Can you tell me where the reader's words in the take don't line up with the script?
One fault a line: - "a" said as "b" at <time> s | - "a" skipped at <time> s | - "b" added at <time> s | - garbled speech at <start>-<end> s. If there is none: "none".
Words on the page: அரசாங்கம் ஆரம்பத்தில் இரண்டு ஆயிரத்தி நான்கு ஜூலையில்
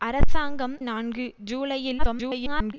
- "ஆரம்பத்தில் இரண்டு ஆயிரத்தி" skipped at 0.8 s
- garbled speech at 2.0-2.7 s